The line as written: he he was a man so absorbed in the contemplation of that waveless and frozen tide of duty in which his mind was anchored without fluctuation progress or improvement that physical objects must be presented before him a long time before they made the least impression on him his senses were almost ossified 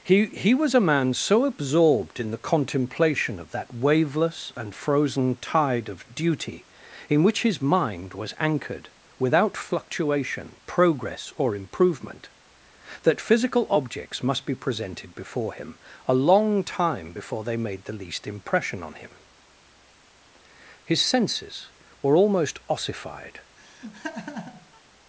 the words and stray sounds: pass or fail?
fail